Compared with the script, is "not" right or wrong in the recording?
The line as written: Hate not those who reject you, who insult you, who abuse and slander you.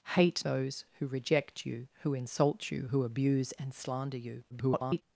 wrong